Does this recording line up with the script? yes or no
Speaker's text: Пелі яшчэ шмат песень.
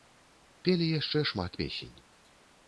yes